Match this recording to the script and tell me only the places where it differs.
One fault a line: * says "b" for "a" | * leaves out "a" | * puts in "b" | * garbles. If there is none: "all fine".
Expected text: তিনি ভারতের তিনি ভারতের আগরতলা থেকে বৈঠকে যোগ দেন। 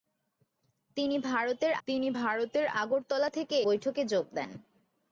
all fine